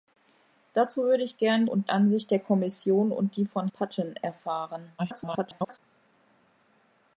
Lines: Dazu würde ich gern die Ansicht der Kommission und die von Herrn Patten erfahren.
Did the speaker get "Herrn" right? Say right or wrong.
wrong